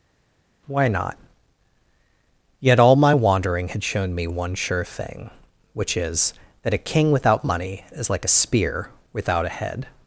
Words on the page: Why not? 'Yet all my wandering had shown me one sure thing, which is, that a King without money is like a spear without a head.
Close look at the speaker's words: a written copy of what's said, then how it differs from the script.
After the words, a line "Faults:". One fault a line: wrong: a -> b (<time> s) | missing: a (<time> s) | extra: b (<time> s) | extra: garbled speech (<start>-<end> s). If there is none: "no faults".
Why not? 'Yet all my wandering had shown me one sure thing, which is, that a King without money is like a spear without a head.
Faults:
no faults